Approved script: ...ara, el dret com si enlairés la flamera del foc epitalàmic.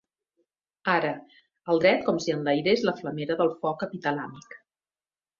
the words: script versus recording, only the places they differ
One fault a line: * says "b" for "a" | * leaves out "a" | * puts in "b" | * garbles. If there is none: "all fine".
all fine